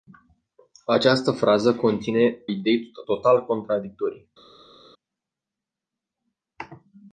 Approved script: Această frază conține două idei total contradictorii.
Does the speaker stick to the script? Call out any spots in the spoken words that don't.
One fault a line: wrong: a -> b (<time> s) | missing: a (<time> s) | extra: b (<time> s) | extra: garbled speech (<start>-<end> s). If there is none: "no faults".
missing: două (2.4 s)